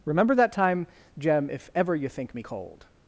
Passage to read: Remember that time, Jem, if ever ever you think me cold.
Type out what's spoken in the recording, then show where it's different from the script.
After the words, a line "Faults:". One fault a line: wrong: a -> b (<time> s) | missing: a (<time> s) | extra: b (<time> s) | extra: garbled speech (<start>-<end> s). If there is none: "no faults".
Remember that time, Jem, if ever you think me cold.
Faults:
missing: ever (1.9 s)